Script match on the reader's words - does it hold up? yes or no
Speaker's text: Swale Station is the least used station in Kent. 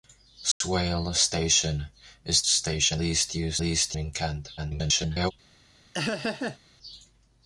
no